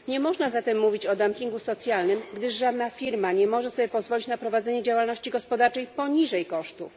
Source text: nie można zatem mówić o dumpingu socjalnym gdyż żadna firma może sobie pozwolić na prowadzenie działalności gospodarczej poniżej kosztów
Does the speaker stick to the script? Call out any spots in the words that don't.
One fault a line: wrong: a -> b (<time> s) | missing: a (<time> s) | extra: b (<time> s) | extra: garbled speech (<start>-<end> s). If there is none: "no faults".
extra: nie (3.3 s)